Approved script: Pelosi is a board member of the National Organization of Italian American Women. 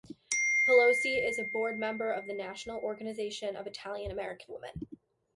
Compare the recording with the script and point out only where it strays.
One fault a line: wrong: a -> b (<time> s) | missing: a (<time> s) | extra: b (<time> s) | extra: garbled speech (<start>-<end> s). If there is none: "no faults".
no faults